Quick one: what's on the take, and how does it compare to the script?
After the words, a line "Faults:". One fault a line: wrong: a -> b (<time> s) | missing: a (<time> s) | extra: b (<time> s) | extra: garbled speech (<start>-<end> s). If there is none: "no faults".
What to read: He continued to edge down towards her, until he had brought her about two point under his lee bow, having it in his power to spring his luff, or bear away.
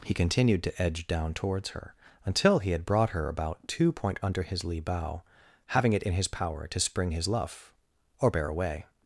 He continued to edge down towards her, until he had brought her about two point under his lee bow, having it in his power to spring his luff, or bear away.
Faults:
no faults